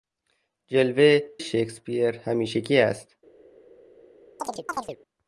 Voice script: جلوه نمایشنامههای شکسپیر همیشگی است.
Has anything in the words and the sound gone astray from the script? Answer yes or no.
yes